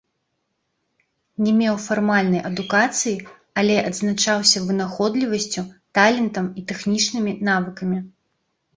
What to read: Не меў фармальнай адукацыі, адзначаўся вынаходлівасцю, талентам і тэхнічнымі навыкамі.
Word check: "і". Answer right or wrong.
right